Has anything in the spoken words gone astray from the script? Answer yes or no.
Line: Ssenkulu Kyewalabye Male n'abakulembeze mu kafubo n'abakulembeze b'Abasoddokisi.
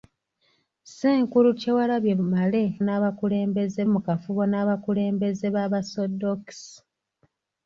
no